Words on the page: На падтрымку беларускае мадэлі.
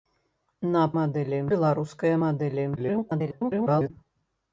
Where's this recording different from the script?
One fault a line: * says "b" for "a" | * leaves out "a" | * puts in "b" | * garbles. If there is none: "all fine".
* says "мадэлі" for "падтрымку"
* garbles